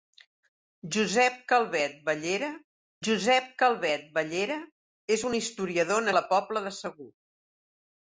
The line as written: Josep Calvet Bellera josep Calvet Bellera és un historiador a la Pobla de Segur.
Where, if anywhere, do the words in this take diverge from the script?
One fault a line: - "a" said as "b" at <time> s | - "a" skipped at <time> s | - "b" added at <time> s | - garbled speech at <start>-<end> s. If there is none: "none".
none